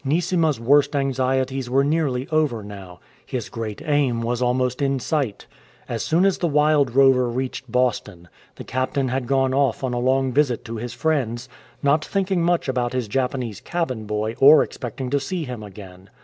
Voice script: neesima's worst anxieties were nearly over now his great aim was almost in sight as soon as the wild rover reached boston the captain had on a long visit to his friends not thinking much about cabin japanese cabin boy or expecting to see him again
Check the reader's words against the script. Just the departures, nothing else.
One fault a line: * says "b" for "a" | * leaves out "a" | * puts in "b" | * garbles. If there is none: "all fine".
* puts in "gone off"
* says "his" for "cabin"